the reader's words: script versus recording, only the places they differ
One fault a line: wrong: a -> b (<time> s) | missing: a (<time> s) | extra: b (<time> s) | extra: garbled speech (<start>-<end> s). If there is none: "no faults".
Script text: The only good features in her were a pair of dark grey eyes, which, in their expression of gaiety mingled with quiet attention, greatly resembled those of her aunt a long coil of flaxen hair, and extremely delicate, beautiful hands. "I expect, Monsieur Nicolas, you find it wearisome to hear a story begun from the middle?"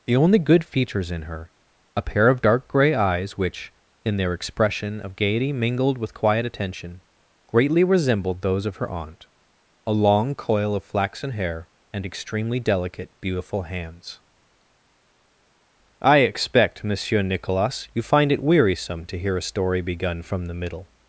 missing: were (1.5 s)